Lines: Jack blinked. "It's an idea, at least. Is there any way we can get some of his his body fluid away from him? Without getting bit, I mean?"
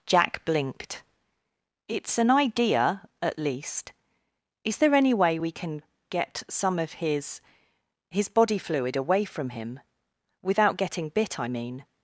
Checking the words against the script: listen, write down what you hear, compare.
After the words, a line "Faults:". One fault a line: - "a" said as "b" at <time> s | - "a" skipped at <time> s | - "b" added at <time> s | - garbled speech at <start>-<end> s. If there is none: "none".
Jack blinked. "It's an idea, at least. Is there any way we can get some of his his body fluid away from him? Without getting bit, I mean?"
Faults:
none